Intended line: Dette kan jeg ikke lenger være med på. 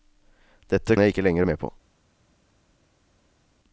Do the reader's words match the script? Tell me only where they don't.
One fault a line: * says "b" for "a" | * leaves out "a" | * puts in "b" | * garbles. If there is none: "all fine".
* leaves out "kan"
* leaves out "være"